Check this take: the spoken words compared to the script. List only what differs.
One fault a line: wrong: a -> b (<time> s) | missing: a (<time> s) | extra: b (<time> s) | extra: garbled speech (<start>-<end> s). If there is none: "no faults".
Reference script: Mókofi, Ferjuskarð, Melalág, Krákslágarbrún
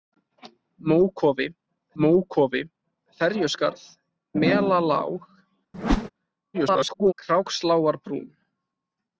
extra: mókofi (2.0 s)
extra: garbled speech (6.5-7.1 s)